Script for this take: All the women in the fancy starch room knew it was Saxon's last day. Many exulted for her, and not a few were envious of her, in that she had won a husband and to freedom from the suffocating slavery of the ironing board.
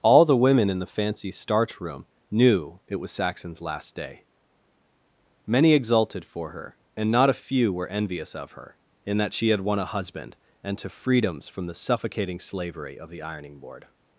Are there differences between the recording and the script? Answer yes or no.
yes